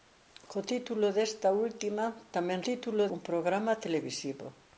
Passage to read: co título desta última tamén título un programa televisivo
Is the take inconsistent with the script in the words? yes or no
no